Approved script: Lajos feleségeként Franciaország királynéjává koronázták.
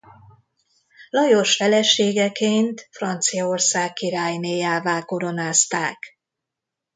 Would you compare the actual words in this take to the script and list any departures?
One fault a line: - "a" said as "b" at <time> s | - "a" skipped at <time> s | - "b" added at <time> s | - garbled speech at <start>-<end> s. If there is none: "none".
none